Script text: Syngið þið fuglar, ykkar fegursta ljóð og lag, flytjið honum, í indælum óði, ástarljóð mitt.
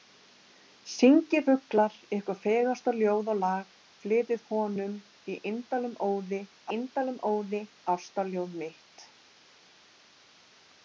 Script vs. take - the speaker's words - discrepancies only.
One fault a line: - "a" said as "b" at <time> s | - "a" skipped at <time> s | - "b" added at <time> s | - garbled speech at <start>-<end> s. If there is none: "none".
- "þið" skipped at 1.4 s
- "indælum óði" added at 6.8 s